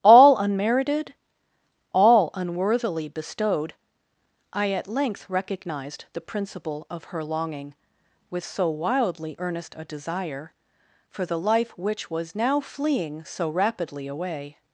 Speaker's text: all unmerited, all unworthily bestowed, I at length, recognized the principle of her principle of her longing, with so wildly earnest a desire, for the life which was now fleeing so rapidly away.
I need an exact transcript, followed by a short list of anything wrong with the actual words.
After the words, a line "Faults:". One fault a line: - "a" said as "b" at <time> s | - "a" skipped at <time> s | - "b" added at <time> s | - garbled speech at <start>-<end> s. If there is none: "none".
all unmerited, all unworthily bestowed, I at length, recognized the principle of her longing, with so wildly earnest a desire, for the life which was now fleeing so rapidly away.
Faults:
- "principle of her" skipped at 7.2 s